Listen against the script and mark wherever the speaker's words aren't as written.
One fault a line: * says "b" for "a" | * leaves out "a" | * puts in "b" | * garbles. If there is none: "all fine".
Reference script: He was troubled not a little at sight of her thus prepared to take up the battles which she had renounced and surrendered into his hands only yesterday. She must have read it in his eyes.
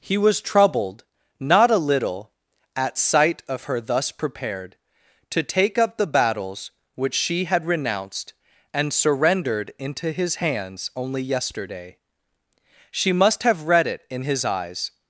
all fine